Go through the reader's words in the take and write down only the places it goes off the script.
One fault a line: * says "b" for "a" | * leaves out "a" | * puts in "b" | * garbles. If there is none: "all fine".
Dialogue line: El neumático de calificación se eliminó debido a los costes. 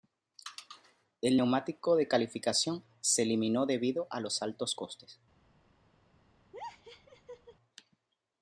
* puts in "altos"